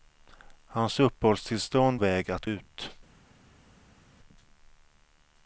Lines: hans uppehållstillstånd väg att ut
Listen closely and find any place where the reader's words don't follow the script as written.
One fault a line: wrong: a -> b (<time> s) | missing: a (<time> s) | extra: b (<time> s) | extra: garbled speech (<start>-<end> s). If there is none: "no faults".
no faults